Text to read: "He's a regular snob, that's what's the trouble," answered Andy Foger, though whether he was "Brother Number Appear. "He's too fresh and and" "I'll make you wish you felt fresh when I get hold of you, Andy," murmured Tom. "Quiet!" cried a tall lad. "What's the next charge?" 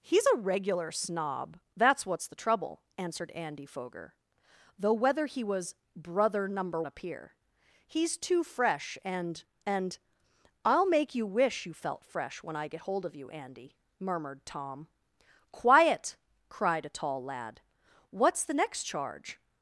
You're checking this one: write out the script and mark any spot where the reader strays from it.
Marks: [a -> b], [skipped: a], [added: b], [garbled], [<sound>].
"He's a regular snob, that's what's the trouble," answered Andy Foger, though whether he was "Brother Number Appear. "He's too fresh and and" "I'll make you wish you felt fresh when I get hold of you, Andy," murmured Tom. "Quiet!" cried a tall lad. "What's the next charge?"